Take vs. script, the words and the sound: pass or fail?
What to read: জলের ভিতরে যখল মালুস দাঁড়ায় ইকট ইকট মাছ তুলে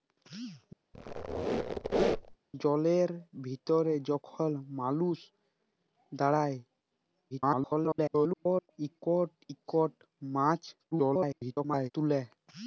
fail